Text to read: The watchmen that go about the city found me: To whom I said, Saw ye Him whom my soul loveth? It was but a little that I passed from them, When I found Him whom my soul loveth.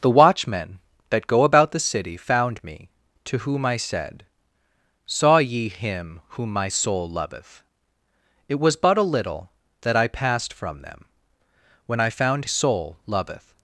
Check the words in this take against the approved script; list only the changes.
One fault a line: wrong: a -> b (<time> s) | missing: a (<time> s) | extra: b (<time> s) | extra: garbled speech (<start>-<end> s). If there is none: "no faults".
missing: Him whom my (12.4 s)